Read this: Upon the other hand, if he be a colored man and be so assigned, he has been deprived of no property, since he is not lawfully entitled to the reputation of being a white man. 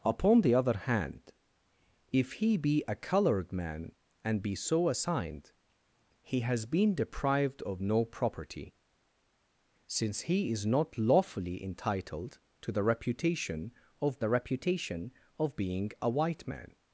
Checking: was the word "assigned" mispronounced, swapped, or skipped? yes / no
no